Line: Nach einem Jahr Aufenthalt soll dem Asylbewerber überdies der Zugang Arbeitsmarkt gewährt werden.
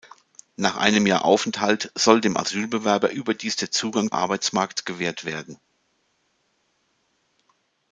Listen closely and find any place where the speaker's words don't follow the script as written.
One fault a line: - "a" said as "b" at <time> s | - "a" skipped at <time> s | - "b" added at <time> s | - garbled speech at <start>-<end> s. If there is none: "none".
none